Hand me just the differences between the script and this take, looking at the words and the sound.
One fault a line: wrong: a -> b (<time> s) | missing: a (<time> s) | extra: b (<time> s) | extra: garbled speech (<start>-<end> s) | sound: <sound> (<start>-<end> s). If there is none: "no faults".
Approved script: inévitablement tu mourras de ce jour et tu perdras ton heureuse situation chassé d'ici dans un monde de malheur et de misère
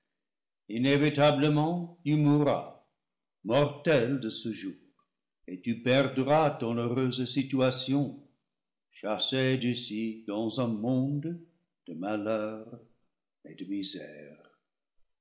extra: mortel (3.4 s)